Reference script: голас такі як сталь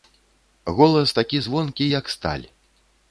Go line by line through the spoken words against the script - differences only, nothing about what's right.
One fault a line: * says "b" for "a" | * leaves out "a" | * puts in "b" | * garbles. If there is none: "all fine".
* puts in "звонкі"